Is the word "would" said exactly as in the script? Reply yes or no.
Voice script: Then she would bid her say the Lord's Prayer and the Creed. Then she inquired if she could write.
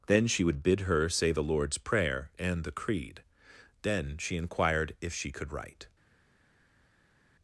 yes